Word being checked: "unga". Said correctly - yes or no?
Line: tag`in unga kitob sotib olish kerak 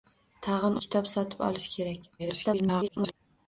no